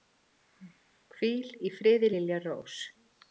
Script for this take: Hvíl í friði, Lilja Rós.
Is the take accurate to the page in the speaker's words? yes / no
yes